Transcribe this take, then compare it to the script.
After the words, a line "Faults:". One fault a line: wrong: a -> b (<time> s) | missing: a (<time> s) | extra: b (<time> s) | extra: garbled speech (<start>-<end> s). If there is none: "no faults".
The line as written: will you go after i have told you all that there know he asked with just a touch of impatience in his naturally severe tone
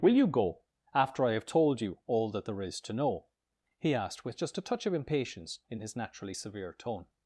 will you go after i have told you all that there is to know he asked with just a touch of impatience in his naturally severe tone
Faults:
extra: is to (2.6 s)